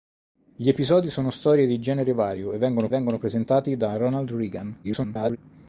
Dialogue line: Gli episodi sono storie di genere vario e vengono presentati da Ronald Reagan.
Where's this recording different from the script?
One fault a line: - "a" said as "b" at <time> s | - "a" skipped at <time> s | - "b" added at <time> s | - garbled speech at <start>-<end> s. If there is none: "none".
- "vengono" added at 2.9 s
- garbled speech at 4.8-5.4 s